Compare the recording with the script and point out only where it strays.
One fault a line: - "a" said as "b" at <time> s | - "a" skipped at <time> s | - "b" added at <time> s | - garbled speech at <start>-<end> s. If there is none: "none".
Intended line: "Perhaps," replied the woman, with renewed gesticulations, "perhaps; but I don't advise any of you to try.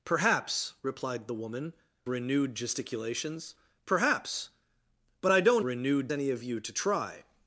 - "with" skipped at 1.7 s
- "advise" said as "renewed" at 5.6 s